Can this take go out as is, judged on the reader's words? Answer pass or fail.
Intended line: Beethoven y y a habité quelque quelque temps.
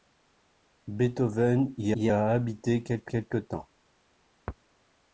pass